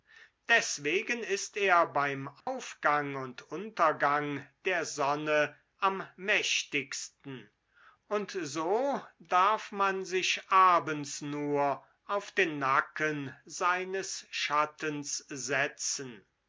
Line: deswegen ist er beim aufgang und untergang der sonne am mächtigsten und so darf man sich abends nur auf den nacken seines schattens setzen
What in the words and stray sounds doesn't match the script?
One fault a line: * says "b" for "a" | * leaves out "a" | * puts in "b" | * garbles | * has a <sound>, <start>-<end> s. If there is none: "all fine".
* has a dropout, 2.4-2.5 s